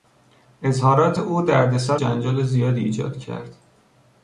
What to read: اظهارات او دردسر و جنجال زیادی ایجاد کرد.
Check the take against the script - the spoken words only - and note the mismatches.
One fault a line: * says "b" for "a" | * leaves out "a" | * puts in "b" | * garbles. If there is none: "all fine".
* leaves out "و"